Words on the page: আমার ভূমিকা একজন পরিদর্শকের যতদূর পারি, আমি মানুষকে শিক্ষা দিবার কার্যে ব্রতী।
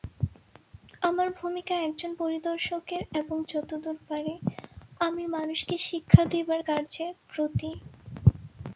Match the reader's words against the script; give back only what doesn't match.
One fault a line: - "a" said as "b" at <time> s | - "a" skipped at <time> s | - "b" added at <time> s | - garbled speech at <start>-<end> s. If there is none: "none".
- "এবং" added at 3.1 s